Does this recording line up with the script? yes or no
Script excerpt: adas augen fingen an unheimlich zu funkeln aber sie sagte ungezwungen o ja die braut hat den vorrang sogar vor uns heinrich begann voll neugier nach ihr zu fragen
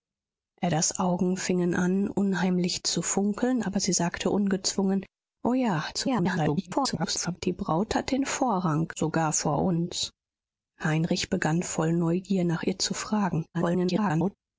no